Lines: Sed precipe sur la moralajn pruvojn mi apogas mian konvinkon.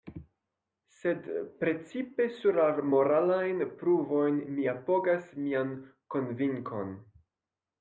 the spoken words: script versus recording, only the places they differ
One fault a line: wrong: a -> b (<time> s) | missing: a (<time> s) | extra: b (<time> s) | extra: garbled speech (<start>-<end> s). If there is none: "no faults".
no faults